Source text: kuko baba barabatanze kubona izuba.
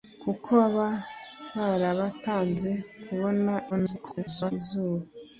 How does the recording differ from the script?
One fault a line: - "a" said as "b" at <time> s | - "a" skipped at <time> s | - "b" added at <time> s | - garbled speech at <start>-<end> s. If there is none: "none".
- garbled speech at 3.7-4.5 s